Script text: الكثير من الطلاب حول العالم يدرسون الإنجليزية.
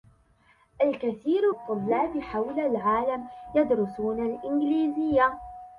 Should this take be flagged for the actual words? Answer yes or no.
yes